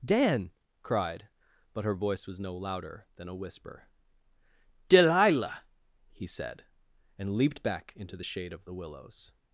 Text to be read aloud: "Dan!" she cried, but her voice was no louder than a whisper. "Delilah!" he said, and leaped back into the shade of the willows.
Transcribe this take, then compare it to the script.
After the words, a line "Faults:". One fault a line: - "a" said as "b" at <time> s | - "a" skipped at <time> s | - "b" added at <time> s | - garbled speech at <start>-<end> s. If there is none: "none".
"Dan!" cried, but her voice was no louder than a whisper. "Delilah!" he said, and leaped back into the shade of the willows.
Faults:
- "she" skipped at 0.5 s